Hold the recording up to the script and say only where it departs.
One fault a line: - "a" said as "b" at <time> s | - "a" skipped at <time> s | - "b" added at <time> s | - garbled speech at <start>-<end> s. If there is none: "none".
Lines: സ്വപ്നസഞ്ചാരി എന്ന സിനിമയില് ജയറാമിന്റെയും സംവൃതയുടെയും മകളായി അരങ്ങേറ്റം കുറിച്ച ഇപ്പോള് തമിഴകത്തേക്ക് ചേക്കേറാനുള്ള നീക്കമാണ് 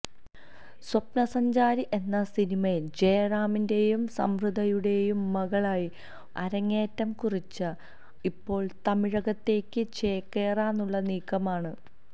none